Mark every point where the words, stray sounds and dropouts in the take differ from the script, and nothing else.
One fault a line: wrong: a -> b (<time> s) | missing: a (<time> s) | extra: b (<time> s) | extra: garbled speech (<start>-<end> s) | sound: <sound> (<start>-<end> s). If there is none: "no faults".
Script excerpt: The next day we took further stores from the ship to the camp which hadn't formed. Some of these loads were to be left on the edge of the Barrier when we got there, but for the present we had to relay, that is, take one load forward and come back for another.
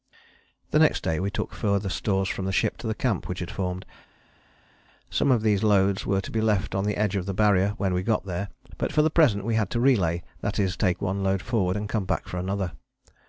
wrong: hadn't -> had (3.4 s)